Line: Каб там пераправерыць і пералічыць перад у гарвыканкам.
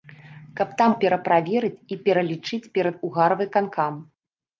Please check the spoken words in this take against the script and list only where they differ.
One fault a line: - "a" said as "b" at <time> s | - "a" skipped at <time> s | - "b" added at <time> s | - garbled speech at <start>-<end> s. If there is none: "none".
none